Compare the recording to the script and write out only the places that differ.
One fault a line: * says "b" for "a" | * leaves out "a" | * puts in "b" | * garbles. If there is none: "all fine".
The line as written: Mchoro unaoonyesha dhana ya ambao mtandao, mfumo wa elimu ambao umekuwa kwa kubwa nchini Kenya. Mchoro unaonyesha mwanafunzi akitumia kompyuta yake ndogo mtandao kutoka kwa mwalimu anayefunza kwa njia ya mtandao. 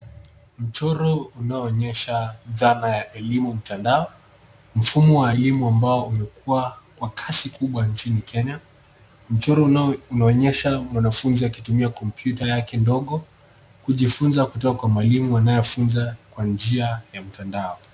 * says "elimu" for "ambao"
* puts in "kasi"
* says "kujifunza" for "mtandao"